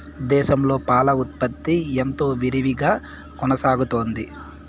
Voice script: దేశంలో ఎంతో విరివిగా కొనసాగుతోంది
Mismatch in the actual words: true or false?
true